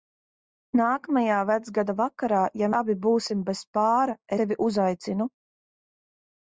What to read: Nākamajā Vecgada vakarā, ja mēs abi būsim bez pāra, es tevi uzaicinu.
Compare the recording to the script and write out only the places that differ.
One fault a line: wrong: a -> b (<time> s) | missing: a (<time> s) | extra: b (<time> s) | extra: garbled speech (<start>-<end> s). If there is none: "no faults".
missing: mēs (2.7 s)
missing: es (4.2 s)